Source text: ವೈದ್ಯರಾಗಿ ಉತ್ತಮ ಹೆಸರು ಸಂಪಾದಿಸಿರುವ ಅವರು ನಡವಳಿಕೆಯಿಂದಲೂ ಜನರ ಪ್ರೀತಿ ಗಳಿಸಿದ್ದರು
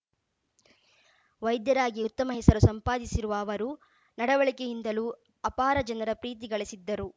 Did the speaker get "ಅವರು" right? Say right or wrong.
right